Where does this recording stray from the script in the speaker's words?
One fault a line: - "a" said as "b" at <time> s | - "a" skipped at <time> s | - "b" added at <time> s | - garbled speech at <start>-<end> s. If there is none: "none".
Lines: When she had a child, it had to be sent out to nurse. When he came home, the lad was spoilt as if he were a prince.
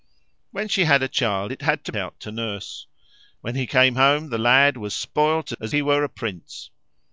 - "be sent" skipped at 1.9 s
- "if" skipped at 5.7 s